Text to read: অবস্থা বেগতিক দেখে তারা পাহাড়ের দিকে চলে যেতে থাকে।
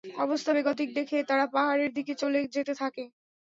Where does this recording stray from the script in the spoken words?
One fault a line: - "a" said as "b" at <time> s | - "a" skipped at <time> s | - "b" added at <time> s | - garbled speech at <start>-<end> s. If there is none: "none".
none